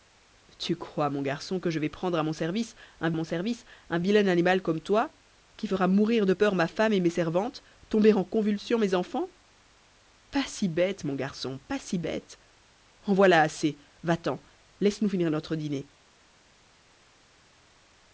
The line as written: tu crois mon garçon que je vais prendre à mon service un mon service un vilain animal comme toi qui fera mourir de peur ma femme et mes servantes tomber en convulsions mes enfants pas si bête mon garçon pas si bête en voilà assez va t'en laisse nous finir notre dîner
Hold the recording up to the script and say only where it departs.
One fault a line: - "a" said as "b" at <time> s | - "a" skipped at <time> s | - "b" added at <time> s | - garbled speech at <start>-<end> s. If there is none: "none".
none